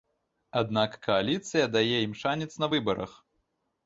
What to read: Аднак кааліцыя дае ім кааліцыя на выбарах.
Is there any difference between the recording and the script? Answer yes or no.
yes